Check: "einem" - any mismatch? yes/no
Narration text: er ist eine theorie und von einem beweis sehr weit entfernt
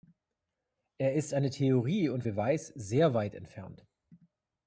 yes